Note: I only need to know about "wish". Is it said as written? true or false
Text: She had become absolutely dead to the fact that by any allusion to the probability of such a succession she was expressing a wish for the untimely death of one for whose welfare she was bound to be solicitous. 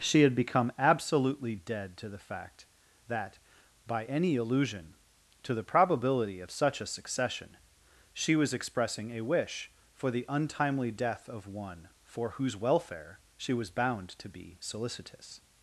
true